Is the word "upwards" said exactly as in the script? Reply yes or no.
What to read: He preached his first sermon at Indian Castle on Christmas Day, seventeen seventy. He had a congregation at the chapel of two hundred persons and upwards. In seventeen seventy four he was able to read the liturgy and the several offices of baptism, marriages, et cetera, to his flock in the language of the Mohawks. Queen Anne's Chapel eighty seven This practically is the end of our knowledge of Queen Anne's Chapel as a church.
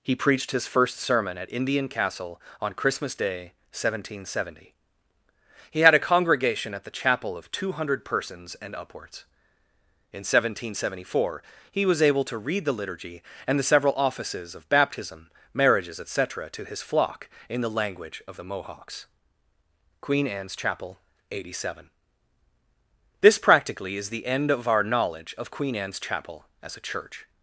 yes